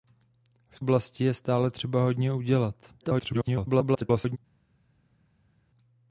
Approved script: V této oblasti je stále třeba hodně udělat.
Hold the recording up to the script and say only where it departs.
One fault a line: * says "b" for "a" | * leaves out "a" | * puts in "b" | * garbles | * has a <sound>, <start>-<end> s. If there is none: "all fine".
* leaves out "této"
* garbles